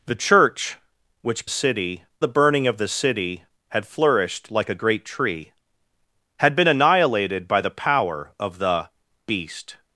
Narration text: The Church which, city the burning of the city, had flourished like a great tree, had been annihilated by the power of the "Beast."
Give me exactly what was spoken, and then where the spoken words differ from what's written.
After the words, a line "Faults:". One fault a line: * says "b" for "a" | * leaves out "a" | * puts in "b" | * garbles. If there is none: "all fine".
The Church which, city the burning of the city, had flourished like a great tree, had been annihilated by the power of the "Beast."
Faults:
all fine